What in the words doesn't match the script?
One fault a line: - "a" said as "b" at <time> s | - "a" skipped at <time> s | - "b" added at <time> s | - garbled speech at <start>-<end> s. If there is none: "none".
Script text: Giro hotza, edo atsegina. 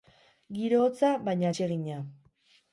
- "edo" said as "baina" at 1.3 s